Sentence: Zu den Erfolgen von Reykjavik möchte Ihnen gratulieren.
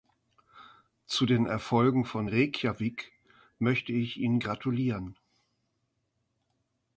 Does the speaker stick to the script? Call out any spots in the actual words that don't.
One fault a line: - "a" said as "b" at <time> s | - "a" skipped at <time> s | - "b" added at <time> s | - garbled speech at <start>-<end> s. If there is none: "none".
- "ich" added at 3.9 s